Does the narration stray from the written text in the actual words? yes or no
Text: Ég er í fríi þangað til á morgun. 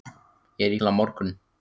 yes